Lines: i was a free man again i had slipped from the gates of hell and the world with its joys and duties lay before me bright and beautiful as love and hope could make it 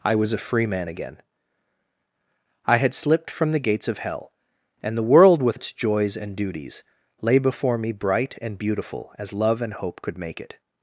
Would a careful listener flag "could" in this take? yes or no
no